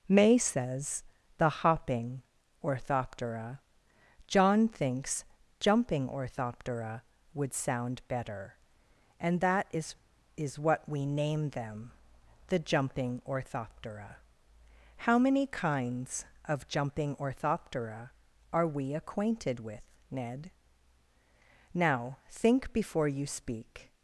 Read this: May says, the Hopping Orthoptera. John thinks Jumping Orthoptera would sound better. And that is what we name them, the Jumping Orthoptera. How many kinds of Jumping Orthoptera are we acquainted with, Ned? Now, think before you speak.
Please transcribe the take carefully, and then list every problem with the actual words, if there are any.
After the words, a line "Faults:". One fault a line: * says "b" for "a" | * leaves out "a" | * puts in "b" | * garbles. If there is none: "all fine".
May says, the Hopping Orthoptera. John thinks Jumping Orthoptera would sound better. And that is is what we name them, the Jumping Orthoptera. How many kinds of Jumping Orthoptera are we acquainted with, Ned? Now, think before you speak.
Faults:
* puts in "is"